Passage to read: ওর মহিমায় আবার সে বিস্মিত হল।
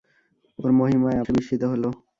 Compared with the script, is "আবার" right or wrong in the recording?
wrong